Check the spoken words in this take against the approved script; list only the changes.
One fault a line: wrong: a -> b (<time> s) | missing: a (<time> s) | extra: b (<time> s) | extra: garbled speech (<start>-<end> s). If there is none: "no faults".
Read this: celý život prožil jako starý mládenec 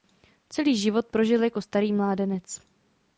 no faults